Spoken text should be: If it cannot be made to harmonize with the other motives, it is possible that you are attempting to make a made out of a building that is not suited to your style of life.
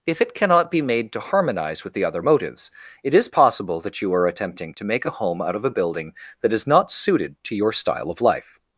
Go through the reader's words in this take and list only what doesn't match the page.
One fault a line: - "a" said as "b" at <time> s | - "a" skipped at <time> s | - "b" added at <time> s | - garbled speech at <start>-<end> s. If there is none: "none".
- "made" said as "home" at 5.1 s